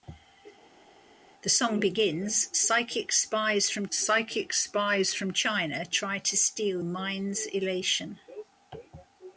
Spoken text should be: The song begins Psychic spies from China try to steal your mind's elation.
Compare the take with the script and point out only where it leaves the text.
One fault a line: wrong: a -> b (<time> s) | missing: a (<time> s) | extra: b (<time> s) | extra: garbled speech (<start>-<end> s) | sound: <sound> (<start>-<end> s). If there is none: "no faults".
extra: Psychic spies from (3.9 s)
missing: your (6.8 s)